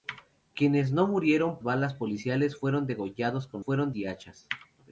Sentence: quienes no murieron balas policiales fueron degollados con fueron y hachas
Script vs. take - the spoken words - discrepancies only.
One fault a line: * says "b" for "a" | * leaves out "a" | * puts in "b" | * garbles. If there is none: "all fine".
all fine